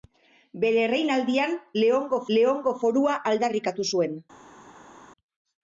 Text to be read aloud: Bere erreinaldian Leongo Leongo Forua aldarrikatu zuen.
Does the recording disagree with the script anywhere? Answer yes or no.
no